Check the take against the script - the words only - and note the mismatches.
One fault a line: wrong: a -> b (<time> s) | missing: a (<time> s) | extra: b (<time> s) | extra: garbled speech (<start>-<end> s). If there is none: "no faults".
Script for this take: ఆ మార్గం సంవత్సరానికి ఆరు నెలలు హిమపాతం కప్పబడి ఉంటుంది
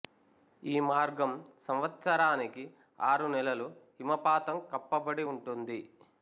wrong: ఆ -> ఈ (0.6 s)